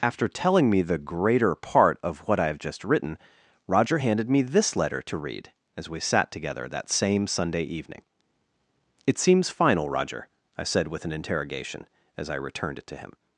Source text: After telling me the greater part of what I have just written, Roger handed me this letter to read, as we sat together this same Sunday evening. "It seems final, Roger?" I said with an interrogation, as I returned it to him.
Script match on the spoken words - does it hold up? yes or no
no